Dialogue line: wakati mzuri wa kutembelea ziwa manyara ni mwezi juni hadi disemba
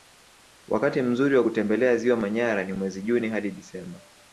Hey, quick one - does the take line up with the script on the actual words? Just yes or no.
yes